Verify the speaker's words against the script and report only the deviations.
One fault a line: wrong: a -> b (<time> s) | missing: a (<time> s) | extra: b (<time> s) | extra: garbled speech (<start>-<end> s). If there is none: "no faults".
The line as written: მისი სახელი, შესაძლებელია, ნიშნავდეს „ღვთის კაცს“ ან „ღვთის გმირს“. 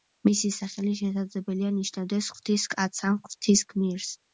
no faults